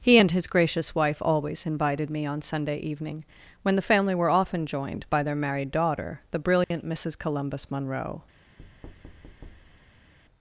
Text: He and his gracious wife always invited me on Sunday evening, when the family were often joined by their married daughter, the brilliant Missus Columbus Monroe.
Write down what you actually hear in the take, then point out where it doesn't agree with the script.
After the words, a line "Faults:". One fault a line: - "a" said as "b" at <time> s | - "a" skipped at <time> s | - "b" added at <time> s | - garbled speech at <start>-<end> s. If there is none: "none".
He and his gracious wife always invited me on Sunday evening, when the family were often joined by their married daughter, the brilliant Missus Columbus Monroe.
Faults:
none